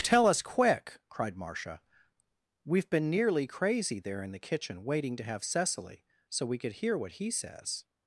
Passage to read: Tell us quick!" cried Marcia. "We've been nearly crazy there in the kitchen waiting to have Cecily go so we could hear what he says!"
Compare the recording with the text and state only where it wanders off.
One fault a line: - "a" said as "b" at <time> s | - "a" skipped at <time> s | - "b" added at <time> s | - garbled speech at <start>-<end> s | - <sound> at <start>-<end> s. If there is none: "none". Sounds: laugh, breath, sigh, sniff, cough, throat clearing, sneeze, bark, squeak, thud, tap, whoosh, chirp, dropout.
- "go" skipped at 6.0 s